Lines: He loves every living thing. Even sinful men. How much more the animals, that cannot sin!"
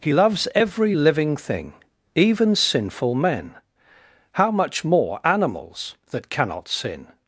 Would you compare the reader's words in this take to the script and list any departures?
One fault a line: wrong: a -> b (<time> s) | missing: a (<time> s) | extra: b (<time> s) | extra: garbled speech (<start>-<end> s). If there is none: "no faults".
missing: the (5.2 s)